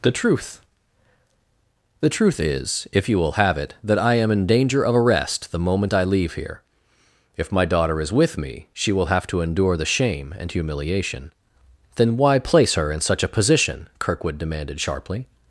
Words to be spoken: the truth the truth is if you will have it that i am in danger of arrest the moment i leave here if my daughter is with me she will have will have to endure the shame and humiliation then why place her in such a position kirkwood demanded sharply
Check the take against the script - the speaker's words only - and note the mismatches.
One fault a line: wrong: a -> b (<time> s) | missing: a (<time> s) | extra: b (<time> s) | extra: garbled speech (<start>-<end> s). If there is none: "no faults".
missing: will have (9.3 s)